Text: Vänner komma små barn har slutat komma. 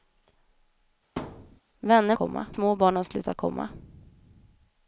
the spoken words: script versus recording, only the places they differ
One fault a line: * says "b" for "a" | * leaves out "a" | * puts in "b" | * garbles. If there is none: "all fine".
all fine